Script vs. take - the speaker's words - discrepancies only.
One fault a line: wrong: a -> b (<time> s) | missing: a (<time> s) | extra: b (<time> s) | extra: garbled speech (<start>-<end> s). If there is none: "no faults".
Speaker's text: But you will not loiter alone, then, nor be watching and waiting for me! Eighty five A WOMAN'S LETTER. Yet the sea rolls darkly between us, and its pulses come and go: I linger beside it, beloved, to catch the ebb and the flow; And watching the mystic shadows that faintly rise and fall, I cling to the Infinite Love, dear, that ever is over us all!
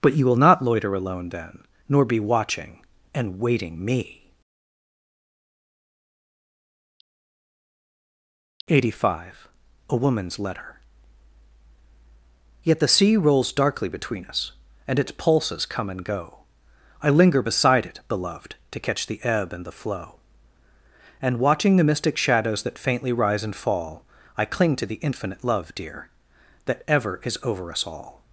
missing: for (3.8 s)